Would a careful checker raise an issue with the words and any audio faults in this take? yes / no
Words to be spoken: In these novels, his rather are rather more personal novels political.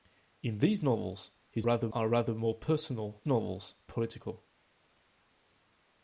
no